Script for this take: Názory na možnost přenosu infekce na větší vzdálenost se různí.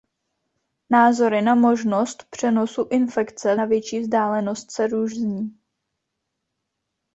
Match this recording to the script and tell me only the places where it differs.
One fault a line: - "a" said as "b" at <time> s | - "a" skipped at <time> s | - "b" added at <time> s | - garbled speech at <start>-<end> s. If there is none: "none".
none